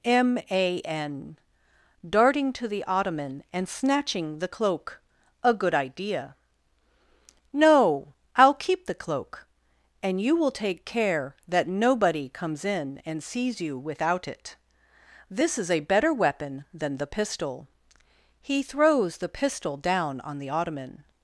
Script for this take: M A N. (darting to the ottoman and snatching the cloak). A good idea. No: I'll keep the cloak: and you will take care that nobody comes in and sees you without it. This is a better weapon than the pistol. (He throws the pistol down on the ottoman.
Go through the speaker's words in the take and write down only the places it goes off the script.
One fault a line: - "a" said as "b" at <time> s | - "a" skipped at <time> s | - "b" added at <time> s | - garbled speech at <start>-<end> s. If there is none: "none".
none